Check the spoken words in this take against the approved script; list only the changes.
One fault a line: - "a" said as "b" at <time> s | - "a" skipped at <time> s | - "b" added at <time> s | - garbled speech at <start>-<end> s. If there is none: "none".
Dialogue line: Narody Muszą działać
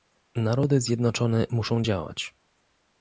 - "Zjednoczone" added at 0.8 s